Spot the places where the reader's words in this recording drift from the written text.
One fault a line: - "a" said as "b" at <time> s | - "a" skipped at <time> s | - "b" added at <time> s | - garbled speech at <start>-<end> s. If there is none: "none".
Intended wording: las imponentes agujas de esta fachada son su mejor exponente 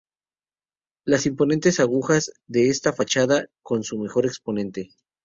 none